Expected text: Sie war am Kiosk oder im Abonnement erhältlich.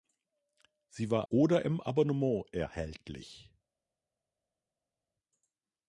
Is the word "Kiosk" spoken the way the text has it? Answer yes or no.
no